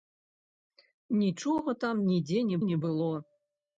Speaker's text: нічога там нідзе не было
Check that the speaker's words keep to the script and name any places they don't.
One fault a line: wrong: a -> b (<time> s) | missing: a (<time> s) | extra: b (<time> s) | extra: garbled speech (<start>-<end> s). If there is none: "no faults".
extra: не (2.7 s)